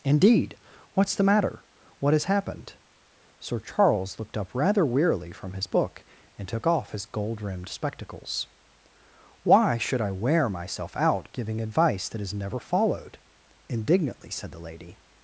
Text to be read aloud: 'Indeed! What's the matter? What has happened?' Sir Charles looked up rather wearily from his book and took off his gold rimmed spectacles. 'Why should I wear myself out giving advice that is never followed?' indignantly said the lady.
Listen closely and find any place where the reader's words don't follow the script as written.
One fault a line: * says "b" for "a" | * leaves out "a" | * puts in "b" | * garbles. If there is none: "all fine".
all fine